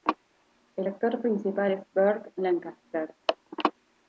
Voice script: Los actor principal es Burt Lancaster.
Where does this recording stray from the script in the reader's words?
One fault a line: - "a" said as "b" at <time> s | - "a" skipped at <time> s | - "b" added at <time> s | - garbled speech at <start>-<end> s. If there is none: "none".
- "Los" said as "El" at 0.8 s